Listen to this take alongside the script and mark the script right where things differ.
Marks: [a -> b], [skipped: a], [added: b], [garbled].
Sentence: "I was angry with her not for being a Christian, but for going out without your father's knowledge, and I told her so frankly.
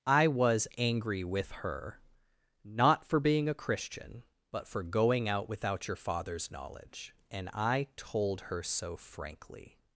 "I was angry with her not for being a Christian, but for going out without your father's knowledge, and I told her so frankly.